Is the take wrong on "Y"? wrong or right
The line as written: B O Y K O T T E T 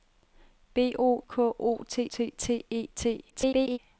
wrong